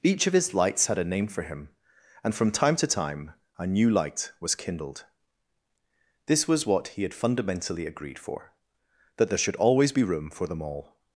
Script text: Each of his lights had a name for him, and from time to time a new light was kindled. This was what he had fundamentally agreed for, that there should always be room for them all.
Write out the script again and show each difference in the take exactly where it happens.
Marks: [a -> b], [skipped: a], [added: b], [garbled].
Each of his lights had a name for him, and from time to time a new light was kindled. This was what he had fundamentally agreed for, that there should always be room for them all.